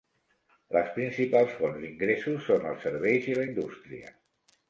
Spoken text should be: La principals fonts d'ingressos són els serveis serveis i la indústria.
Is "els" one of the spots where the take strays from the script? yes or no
no